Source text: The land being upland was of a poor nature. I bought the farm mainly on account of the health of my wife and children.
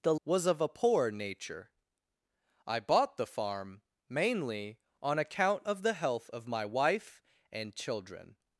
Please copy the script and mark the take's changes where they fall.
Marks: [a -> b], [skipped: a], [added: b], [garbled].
The [skipped: land being upland] was of a poor nature. I bought the farm mainly on account of the health of my wife and children.